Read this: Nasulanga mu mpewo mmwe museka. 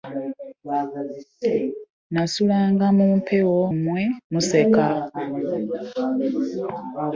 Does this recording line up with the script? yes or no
yes